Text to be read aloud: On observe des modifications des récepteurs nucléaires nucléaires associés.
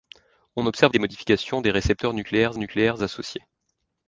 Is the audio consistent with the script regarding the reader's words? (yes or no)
yes